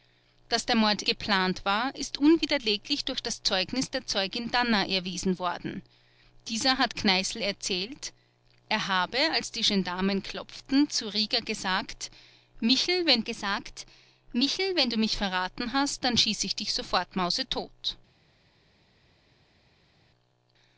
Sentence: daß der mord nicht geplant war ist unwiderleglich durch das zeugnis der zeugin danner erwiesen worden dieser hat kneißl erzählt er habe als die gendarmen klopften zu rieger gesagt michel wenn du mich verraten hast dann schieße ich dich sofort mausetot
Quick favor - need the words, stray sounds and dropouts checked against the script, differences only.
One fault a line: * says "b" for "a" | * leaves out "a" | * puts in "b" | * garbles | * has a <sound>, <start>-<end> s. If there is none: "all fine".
* leaves out "nicht"
* puts in "gesagt michel wenn"